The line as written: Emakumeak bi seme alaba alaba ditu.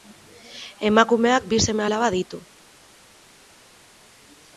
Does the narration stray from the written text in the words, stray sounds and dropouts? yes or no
yes